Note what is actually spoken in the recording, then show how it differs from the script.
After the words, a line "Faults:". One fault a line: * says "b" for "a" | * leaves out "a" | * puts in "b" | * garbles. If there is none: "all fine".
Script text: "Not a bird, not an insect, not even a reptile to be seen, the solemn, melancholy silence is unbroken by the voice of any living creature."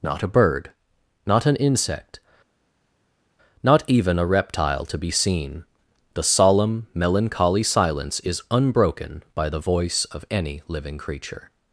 "Not a bird, not an insect, not even a reptile to be seen, the solemn, melancholy silence is unbroken by the voice of any living creature."
Faults:
all fine